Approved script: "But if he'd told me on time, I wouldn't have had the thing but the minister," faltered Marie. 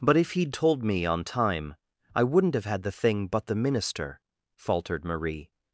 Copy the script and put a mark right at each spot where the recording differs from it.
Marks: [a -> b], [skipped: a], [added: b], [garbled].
"But if he'd told me on time, I wouldn't have had the thing but the minister," faltered Marie.